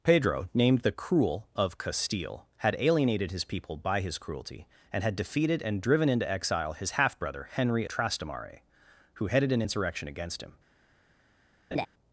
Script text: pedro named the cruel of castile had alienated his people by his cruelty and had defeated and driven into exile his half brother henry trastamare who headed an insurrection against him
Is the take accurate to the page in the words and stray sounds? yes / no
no